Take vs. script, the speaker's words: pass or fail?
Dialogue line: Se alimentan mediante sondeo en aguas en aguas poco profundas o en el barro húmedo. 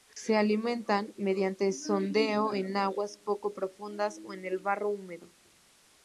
fail